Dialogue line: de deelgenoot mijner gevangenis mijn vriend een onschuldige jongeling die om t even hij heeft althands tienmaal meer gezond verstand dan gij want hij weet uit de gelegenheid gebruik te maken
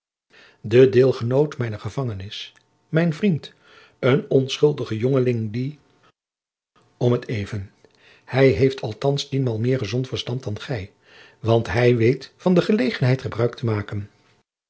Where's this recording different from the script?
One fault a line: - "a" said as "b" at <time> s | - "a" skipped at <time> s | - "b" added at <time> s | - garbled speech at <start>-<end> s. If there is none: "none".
- "uit" said as "van" at 12.4 s